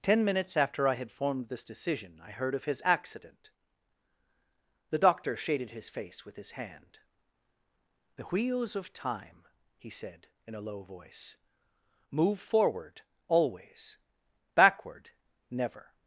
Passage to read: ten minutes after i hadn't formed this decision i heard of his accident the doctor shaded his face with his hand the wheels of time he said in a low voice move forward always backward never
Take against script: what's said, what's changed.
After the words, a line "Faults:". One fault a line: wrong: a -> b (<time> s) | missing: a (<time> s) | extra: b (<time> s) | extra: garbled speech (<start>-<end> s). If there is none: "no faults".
ten minutes after i had formed this decision i heard of his accident the doctor shaded his face with his hand the wheels of time he said in a low voice move forward always backward never
Faults:
wrong: hadn't -> had (0.9 s)